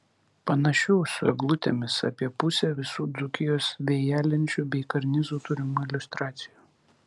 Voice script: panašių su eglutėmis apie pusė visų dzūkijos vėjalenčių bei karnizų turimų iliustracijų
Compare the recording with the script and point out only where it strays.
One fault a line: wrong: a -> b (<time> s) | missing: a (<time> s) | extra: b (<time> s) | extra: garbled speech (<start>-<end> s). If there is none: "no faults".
no faults